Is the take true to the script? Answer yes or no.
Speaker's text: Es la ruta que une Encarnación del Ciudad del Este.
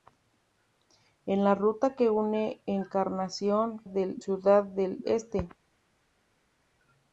yes